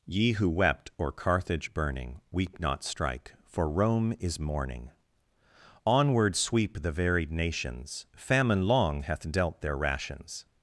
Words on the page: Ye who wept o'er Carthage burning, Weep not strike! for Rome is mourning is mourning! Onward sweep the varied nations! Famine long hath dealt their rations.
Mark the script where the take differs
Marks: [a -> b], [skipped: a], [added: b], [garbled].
Ye who wept o'er Carthage burning, Weep not strike! for Rome is mourning [skipped: is mourning!] Onward sweep the varied nations! Famine long hath dealt their rations.